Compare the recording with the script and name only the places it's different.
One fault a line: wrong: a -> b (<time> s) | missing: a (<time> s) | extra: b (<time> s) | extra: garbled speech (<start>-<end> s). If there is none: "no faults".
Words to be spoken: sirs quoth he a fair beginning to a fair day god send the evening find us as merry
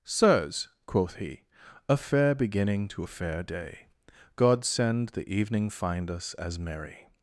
no faults